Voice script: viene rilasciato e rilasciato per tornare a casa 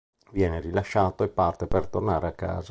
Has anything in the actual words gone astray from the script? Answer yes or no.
yes